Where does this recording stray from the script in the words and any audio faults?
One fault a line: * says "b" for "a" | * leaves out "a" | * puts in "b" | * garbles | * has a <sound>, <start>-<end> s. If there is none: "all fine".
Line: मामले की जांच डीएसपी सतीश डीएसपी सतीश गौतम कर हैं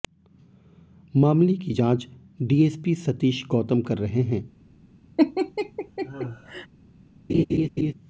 * leaves out "डीएसपी सतीश"
* puts in "रहे"
* has a laugh, 5.2-6.7 s
* has a laugh, 7.3-7.9 s